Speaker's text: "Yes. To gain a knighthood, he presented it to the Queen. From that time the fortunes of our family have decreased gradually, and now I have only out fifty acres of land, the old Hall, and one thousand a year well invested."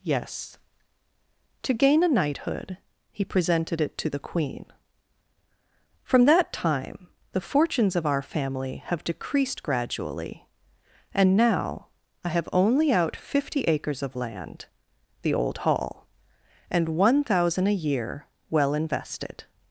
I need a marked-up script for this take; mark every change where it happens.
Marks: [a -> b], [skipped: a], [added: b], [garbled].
"Yes. To gain a knighthood, he presented it to the Queen. From that time the fortunes of our family have decreased gradually, and now I have only out fifty acres of land, the old Hall, and one thousand a year well invested."